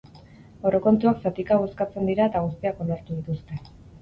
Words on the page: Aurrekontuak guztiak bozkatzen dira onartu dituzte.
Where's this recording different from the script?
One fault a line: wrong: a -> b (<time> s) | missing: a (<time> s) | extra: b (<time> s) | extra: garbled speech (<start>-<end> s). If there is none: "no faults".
wrong: guztiak -> zatika (1.3 s)
extra: eta guztiak (2.3 s)